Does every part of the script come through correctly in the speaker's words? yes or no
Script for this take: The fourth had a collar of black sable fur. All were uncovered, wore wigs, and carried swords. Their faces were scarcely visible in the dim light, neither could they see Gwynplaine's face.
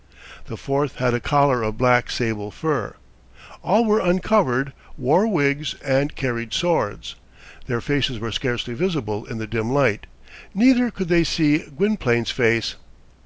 yes